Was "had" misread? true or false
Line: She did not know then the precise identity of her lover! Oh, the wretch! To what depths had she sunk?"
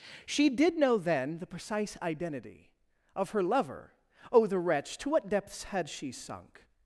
false